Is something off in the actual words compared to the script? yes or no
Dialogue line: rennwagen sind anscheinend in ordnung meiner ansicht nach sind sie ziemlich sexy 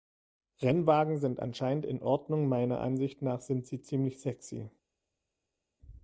no